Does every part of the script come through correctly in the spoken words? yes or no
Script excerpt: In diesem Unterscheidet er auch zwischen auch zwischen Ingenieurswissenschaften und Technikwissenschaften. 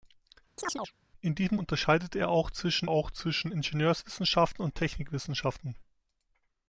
yes